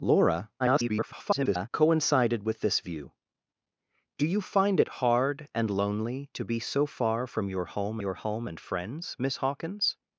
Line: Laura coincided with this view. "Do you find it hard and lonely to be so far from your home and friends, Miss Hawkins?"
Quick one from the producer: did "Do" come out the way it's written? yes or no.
yes